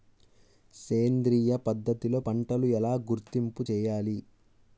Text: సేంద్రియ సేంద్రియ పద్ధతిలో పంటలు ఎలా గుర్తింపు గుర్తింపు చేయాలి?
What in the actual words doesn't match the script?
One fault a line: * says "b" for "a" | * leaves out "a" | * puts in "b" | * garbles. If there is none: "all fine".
* leaves out "సేంద్రియ"
* leaves out "గుర్తింపు"